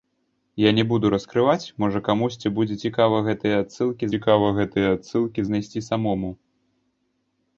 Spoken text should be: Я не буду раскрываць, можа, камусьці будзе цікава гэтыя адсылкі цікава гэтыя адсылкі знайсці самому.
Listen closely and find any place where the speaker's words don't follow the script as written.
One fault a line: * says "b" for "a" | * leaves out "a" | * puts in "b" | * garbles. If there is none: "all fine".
all fine